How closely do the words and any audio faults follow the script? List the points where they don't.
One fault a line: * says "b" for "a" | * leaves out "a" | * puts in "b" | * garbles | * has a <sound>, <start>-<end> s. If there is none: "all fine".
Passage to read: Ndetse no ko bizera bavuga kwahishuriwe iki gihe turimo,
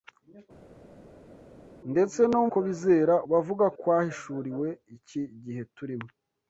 all fine